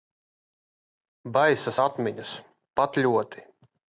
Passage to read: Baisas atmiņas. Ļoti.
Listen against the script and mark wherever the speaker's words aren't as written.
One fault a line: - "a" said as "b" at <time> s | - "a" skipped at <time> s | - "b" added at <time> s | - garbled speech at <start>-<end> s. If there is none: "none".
- "Pat" added at 2.8 s